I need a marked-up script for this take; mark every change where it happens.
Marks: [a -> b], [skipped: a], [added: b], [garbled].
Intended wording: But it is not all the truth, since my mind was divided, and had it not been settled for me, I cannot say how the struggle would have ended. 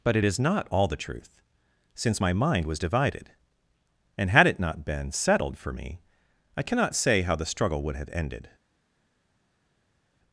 But it is not all the truth, since my mind was divided, and had it not been settled for me, I cannot say how the struggle would have ended.